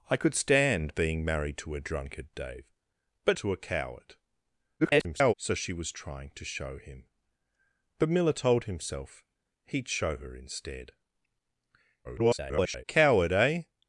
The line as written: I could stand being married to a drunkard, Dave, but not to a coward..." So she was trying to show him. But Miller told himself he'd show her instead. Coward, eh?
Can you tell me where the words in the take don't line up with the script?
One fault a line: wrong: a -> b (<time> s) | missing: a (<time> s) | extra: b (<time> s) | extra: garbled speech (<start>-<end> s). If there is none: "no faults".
missing: not (3.4 s)
extra: garbled speech (4.8-5.3 s)
extra: garbled speech (12.0-12.8 s)